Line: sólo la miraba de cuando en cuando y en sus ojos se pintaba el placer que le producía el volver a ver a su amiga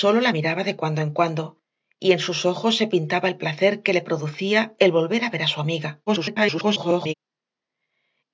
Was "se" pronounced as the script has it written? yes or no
yes